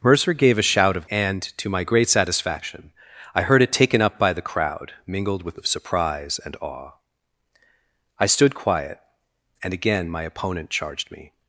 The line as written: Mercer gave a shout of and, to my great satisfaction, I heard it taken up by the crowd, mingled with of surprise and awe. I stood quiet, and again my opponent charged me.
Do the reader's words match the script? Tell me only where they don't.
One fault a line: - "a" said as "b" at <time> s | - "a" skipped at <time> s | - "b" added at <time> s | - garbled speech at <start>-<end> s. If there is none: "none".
none